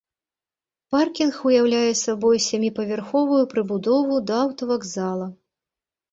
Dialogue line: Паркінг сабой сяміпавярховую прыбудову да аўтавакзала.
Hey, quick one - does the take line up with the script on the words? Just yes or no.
no